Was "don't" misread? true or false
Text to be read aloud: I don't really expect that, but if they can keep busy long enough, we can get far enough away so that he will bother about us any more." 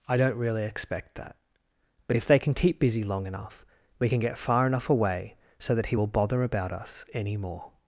false